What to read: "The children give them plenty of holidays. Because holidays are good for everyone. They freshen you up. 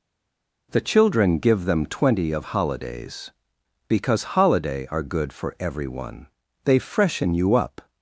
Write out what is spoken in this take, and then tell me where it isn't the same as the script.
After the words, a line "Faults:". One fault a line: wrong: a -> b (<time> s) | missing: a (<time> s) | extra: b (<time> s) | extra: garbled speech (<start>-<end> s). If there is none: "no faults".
"The children give them twenty of holidays. Because holiday are good for everyone. They freshen you up.
Faults:
wrong: plenty -> twenty (1.9 s)
wrong: holidays -> holiday (4.3 s)